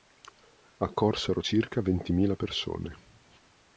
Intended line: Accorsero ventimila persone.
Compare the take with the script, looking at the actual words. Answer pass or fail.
fail